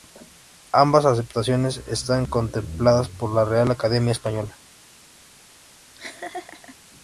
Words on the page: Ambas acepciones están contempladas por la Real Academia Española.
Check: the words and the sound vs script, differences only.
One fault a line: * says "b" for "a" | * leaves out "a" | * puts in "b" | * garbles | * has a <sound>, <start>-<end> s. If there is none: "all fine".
* has a laugh, 5.9-6.8 s